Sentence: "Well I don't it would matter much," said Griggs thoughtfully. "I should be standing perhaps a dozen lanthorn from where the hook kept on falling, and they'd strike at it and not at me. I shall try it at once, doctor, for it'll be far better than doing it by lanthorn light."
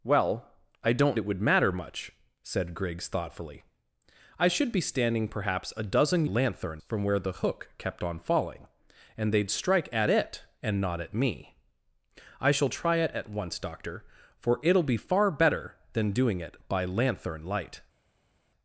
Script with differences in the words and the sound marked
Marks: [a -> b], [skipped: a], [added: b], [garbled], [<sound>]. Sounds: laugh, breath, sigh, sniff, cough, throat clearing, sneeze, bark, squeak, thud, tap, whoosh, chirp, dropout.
"Well I don't it would matter much," said Griggs thoughtfully. "I should be standing perhaps a dozen lanthorn from where the hook kept on falling, and they'd strike at it and not at me. I shall try it at once, doctor, for it'll be far better than doing it by lanthorn light."